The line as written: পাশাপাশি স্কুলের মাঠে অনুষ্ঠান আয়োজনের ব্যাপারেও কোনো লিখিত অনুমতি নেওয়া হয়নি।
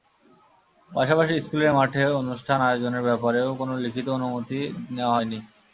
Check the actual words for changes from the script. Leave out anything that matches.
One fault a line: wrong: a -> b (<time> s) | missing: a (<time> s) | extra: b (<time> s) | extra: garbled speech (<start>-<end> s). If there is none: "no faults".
no faults